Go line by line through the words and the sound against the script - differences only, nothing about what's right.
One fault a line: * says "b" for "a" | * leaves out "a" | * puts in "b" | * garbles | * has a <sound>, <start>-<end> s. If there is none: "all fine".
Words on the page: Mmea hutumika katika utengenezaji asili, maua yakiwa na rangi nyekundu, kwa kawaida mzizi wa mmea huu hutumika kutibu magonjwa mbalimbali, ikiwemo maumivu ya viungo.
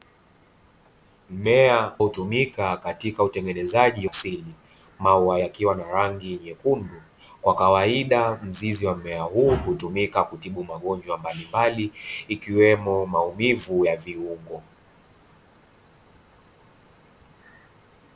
all fine